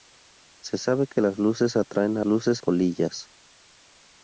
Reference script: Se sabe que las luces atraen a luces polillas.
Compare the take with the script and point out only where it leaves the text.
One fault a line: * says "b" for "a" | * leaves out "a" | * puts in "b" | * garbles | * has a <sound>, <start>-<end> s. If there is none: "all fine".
all fine